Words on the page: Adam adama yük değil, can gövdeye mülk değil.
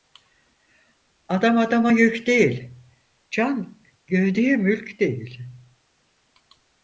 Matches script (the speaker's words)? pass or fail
pass